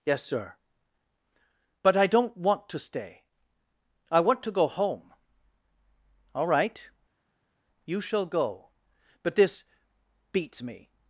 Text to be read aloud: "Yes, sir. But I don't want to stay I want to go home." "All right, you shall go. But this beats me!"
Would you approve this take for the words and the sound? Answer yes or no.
yes